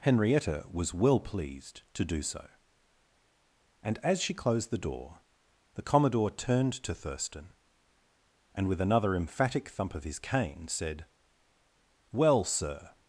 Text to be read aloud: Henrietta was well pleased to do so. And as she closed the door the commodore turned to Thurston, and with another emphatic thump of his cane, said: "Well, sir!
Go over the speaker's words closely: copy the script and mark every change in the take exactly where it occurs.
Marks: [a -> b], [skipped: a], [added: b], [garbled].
Henrietta was well pleased to do so. And as she closed the door the commodore turned to Thurston, and with another emphatic thump of his cane, said: "Well, sir!